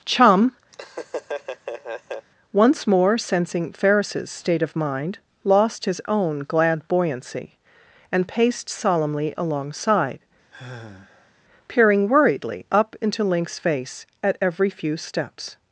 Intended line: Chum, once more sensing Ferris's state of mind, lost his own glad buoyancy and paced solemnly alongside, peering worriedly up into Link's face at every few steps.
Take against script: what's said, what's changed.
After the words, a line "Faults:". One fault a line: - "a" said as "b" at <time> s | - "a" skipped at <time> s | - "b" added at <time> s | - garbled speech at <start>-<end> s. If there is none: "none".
Chum, once more sensing Ferris's state of mind, lost his own glad buoyancy and paced solemnly alongside, peering worriedly up into Link's face at every few steps.
Faults:
none